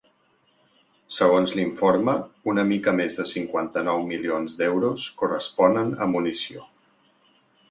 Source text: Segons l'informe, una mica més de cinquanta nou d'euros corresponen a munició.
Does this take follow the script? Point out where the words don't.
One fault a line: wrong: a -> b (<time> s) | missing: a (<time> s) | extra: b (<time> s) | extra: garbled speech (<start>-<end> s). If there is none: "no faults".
extra: milions (4.1 s)